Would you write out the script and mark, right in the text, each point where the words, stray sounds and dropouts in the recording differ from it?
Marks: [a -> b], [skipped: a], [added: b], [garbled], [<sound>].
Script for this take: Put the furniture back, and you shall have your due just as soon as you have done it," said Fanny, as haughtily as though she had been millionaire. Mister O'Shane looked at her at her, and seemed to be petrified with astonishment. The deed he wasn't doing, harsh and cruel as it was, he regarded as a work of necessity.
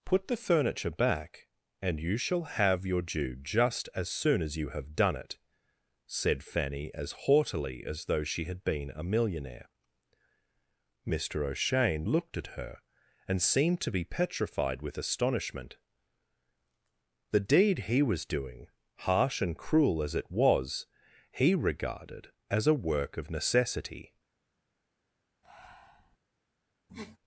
Put the furniture back, and you shall have your due just as soon as you have done it," said Fanny, as haughtily as though she had been [added: a] millionaire. Mister O'Shane looked at her [skipped: at her,] and seemed to be petrified with astonishment. The deed he [wasn't -> was] doing, harsh and cruel as it was, he regarded as a work of necessity. [breath] [sniff]